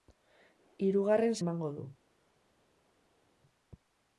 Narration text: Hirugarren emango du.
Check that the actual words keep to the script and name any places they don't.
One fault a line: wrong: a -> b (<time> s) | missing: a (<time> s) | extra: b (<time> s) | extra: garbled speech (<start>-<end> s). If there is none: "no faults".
no faults